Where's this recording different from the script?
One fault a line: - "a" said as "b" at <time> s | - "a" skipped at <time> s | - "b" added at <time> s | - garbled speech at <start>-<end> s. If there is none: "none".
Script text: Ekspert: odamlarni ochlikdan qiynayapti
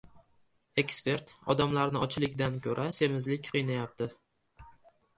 - "ko‘ra semizlik" added at 2.7 s